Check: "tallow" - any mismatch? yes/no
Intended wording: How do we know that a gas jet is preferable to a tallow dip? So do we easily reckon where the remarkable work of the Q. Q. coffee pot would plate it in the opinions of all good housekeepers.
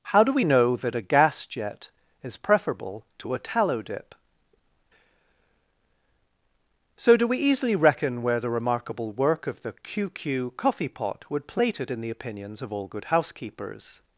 no